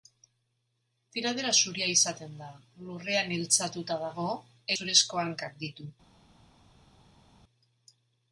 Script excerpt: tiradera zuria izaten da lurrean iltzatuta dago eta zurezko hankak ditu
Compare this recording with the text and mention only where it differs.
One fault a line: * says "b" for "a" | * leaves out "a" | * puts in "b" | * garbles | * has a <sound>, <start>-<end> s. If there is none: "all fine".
* leaves out "eta"